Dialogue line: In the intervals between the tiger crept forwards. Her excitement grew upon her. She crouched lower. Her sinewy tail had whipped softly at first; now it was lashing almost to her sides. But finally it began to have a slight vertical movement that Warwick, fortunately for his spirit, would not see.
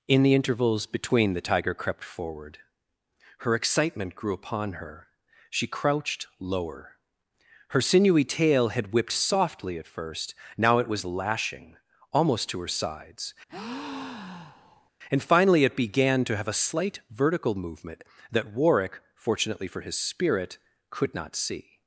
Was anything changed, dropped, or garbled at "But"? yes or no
yes